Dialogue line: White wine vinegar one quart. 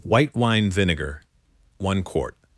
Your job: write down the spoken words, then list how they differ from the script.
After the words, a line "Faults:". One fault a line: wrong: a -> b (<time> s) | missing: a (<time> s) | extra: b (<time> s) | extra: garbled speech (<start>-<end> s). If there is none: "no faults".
White wine vinegar one quart.
Faults:
no faults